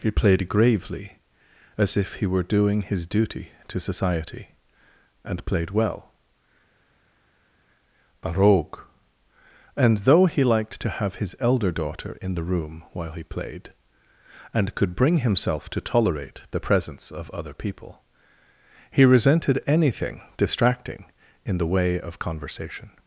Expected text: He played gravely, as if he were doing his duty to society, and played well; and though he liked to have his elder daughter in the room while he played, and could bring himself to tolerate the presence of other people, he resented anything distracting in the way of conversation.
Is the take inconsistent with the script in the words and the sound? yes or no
yes